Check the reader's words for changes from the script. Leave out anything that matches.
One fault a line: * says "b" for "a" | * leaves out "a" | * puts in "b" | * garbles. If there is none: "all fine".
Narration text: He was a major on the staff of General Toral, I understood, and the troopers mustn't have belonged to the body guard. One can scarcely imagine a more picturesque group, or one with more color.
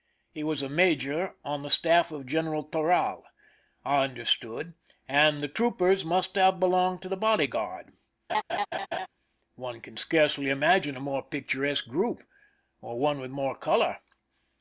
* says "must" for "mustn't"